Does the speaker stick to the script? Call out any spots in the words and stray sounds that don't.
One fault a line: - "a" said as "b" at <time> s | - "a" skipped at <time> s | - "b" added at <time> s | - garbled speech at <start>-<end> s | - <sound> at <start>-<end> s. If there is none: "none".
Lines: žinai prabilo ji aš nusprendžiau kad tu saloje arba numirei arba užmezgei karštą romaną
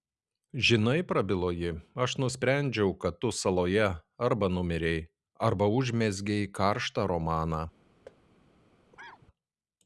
- thud at 8.1-8.2 s
- cough at 8.9-9.3 s